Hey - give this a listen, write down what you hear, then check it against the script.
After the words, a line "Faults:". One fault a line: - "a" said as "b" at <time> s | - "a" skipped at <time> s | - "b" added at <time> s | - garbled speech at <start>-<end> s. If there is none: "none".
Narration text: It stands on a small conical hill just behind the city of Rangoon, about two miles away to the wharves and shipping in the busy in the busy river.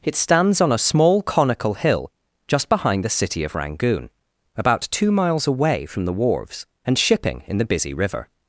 It stands on a small conical hill just behind the city of Rangoon, about two miles away from the wharves and shipping in the busy river.
Faults:
- "to" said as "from" at 5.8 s
- "in the busy" skipped at 7.9 s